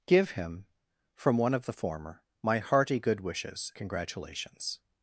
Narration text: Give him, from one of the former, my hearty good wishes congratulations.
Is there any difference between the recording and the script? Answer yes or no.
no